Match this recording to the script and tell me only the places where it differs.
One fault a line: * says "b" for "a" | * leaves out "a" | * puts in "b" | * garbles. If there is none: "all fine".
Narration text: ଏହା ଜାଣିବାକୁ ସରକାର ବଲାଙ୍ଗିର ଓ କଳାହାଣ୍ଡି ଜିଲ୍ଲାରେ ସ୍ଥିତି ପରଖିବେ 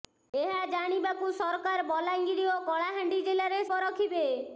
* leaves out "ସ୍ଥିତି"